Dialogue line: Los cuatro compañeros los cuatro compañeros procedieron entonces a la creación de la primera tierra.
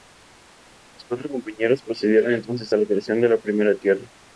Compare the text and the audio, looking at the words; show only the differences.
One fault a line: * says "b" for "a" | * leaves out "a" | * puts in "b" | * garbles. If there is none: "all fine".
* leaves out "los cuatro compañeros"